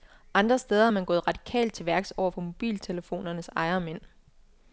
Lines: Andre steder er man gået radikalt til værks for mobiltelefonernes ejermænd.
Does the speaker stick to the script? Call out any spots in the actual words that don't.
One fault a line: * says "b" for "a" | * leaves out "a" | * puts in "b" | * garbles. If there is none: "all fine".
* puts in "over"